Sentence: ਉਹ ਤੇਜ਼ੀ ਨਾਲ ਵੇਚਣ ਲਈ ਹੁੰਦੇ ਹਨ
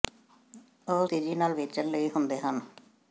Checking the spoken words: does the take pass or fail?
pass